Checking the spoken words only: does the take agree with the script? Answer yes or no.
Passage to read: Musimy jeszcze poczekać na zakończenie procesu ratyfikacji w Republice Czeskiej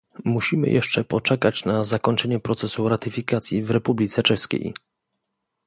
yes